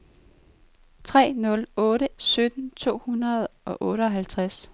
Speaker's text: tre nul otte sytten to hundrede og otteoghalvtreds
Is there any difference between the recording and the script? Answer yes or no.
no